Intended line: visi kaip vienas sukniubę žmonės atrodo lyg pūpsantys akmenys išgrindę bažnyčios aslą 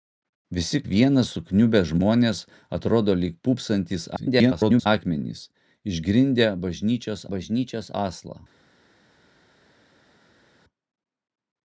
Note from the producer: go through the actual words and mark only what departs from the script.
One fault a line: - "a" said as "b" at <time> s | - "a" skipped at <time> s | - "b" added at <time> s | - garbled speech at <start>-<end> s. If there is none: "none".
- "kaip" skipped at 0.8 s
- garbled speech at 4.2-4.9 s
- "bažnyčios" added at 7.3 s